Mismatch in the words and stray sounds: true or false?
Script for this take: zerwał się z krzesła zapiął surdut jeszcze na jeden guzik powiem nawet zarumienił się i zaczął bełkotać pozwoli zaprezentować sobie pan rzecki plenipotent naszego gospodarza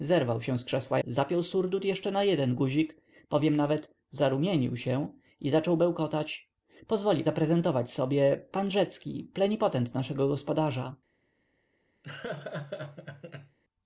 true